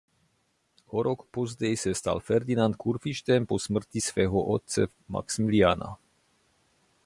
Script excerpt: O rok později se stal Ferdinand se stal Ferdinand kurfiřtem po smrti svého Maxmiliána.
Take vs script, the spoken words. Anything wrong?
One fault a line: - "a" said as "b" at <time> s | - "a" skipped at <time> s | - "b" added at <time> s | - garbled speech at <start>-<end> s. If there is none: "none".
- "se stal Ferdinand" skipped at 2.8 s
- "otce" added at 4.4 s